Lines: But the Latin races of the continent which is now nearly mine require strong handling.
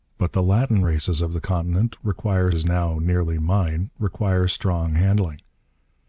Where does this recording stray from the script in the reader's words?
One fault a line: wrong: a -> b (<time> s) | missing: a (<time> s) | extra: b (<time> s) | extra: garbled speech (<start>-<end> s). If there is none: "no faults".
wrong: which -> require (2.0 s)